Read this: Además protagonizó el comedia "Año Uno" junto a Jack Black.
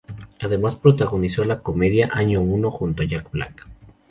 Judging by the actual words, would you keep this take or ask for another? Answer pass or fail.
fail